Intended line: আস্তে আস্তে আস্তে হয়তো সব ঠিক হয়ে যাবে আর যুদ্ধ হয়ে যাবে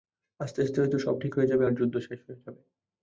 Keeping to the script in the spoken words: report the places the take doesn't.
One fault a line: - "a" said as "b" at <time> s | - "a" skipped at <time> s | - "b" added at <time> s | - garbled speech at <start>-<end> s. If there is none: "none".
- "আস্তে" skipped at 0.8 s
- "শেষ" added at 2.0 s